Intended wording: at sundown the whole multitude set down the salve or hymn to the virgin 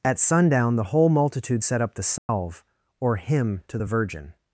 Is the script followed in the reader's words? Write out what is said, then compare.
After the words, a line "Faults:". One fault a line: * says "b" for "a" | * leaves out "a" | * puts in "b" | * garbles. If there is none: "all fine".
at sundown the whole multitude set up the salve or hymn to the virgin
Faults:
* says "up" for "down"